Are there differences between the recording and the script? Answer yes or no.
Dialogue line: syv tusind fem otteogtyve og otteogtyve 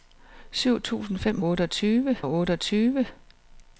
no